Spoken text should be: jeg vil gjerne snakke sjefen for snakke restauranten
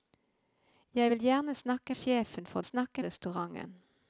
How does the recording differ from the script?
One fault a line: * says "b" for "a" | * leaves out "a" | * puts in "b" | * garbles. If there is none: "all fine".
all fine